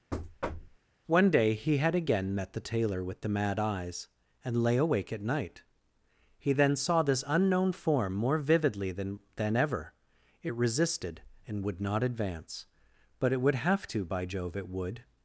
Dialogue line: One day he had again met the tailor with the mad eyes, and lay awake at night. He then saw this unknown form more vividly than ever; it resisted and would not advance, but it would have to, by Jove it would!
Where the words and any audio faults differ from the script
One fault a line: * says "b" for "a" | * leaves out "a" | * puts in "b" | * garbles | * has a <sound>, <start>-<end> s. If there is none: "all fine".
* has a thud, 0.1-0.8 s
* puts in "than"